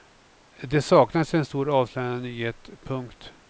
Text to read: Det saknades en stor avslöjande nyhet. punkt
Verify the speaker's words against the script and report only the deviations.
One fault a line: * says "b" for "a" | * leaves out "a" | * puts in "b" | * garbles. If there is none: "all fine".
all fine